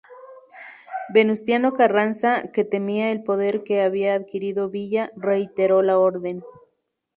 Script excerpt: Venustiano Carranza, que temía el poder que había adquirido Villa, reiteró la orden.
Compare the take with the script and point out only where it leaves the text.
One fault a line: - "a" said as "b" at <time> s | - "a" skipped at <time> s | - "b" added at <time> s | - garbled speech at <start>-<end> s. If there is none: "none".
none